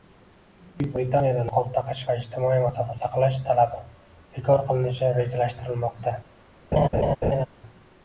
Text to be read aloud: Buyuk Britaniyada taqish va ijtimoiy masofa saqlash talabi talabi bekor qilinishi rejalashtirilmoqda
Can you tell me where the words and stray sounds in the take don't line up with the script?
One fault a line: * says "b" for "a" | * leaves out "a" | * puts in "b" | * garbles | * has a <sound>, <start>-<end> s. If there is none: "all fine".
* puts in "niqob"
* leaves out "talabi"
* has a laugh, 6.7-7.5 s